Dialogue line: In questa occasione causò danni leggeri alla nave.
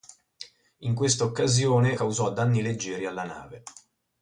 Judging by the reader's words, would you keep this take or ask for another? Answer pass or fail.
pass